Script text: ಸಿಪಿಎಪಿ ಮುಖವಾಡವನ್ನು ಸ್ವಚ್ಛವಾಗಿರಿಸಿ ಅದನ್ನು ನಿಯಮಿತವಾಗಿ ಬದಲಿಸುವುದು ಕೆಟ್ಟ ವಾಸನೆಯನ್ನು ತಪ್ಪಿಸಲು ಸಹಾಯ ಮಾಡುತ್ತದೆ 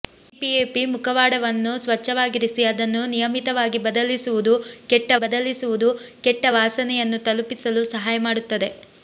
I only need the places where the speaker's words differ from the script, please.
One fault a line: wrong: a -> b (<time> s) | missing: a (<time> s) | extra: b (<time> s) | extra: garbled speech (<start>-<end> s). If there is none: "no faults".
extra: ಬದಲಿಸುವುದು ಕೆಟ್ಟ (5.2 s)